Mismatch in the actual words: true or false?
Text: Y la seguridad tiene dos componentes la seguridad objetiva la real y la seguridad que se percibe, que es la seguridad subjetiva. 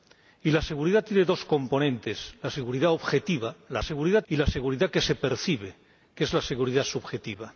true